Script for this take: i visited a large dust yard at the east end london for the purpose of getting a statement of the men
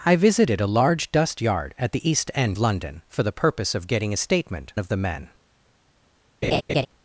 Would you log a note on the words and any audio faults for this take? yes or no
yes